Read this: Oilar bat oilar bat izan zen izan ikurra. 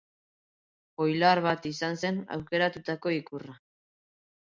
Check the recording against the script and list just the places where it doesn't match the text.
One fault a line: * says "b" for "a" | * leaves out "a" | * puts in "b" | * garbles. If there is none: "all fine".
* leaves out "oilar bat"
* says "aukeratutako" for "izan"